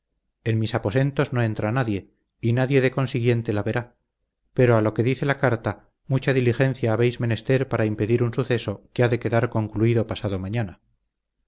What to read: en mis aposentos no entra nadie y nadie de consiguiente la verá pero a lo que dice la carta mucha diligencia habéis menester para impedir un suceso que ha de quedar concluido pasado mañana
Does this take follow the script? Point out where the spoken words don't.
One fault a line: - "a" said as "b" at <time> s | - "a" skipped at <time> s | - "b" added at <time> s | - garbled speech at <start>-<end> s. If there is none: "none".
none